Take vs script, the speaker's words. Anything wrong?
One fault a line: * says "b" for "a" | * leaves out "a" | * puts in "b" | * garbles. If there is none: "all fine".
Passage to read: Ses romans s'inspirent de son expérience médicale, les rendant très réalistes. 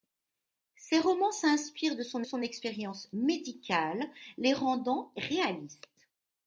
* puts in "son"
* leaves out "très"